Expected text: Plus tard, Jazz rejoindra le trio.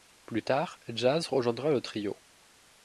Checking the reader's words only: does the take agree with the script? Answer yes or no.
yes